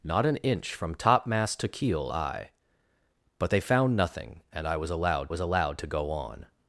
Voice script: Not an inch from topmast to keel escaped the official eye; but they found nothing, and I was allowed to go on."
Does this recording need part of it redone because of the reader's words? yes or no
yes